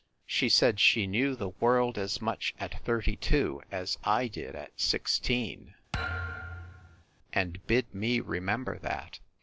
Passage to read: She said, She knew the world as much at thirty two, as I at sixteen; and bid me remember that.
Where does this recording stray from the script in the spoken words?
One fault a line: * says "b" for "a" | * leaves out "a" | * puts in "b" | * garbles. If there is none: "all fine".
* puts in "did"